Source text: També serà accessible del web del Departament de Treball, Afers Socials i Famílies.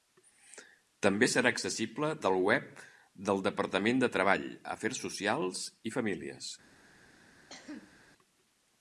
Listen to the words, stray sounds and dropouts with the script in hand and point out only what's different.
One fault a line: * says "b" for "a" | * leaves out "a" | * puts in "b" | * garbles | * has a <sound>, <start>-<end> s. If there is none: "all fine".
* has a cough, 7.5-8.0 s